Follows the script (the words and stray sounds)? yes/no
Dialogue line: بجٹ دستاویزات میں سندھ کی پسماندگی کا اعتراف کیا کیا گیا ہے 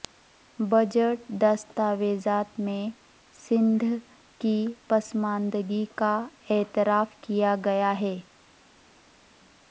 no